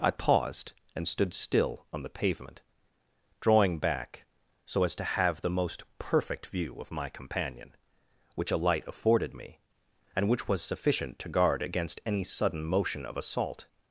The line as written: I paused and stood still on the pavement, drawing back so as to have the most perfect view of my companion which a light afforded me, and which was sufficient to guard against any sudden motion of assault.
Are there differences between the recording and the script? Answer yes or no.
no